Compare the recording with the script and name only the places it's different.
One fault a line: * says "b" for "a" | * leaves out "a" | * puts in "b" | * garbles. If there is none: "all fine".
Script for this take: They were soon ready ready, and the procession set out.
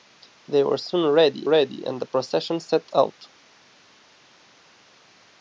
all fine